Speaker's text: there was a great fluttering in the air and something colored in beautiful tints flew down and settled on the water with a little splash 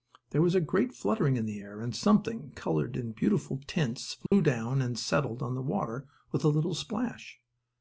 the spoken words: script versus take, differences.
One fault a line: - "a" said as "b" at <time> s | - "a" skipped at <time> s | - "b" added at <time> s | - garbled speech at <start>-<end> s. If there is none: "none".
none